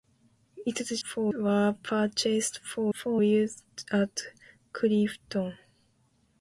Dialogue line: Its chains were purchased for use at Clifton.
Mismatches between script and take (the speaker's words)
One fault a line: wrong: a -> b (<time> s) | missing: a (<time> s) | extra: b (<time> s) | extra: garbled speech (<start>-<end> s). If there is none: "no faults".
wrong: chains -> for (1.0 s)
extra: for (2.9 s)